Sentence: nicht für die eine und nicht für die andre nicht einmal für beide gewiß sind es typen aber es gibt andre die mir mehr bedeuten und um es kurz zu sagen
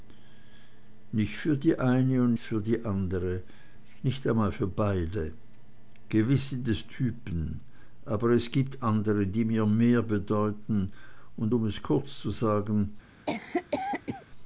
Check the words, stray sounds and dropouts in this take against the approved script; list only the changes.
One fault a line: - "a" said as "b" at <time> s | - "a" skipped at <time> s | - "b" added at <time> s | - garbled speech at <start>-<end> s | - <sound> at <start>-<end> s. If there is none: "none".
- "nicht" skipped at 2.3 s
- cough at 13.3-14.2 s